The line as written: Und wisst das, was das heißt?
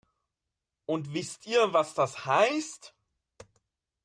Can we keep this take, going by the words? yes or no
no